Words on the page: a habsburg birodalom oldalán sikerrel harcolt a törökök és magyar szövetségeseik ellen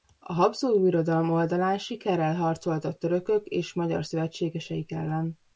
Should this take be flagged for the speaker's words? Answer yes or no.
no